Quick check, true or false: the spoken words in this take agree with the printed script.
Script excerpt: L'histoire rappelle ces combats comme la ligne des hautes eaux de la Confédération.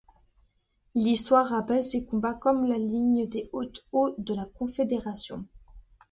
true